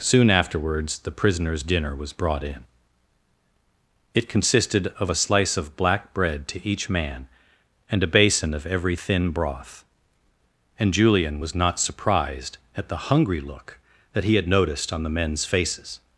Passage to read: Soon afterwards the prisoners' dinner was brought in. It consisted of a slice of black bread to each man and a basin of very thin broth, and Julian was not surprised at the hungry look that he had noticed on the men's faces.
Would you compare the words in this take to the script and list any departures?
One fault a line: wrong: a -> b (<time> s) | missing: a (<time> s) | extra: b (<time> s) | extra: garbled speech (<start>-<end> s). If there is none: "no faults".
wrong: very -> every (8.6 s)